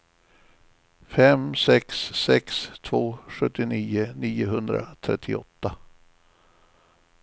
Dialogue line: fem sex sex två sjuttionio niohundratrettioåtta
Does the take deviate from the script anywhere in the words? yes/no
no